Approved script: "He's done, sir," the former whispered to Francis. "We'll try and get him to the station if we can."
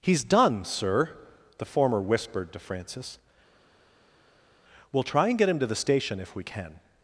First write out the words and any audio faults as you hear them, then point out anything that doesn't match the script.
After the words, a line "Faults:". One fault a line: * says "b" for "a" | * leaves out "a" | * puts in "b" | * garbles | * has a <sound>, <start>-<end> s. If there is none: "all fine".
"He's done, sir," the former whispered to Francis. "We'll try and get him to the station if we can."
Faults:
all fine